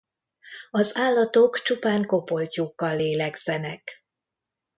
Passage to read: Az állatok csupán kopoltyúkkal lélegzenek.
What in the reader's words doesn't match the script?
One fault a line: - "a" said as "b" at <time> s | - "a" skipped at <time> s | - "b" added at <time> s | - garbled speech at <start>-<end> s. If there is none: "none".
none